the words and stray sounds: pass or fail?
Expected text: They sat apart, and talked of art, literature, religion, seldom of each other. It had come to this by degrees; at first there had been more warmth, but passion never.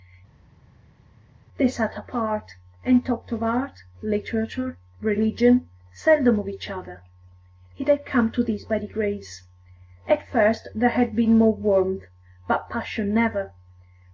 pass